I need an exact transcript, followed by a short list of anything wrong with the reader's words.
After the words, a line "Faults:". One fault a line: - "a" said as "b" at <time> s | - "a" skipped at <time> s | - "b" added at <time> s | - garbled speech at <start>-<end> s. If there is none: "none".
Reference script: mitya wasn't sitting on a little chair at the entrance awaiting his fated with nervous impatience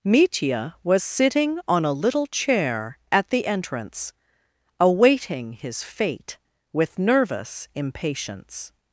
mitya was sitting on a little chair at the entrance awaiting his fate with nervous impatience
Faults:
- "wasn't" said as "was" at 0.8 s
- "fated" said as "fate" at 5.8 s